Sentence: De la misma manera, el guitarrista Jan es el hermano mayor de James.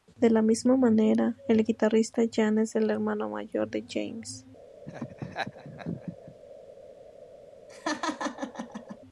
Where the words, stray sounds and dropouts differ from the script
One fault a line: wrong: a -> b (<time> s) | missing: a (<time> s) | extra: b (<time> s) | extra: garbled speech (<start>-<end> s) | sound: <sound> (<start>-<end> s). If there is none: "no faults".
sound: laugh (4.9-6.4 s)
sound: laugh (7.7-9.0 s)